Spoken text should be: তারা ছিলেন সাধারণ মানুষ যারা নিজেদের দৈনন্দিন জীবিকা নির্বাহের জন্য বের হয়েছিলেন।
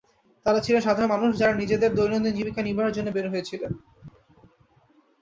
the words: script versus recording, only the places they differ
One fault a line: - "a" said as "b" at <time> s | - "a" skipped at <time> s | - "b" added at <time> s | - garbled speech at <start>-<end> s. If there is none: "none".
none